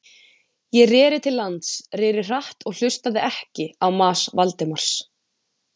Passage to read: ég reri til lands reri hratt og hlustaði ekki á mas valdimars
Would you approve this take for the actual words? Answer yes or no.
yes